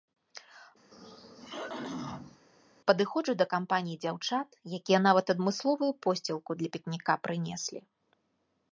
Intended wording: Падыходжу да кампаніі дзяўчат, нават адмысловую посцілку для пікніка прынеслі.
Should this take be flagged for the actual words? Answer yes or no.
yes